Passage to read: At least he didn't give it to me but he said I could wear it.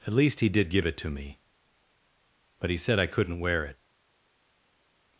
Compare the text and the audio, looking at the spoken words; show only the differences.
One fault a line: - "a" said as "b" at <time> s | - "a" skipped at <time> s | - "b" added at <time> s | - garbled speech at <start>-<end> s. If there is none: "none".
- "didn't" said as "did" at 0.5 s
- "could" said as "couldn't" at 3.1 s